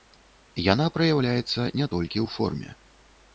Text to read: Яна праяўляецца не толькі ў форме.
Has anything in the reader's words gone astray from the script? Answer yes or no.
no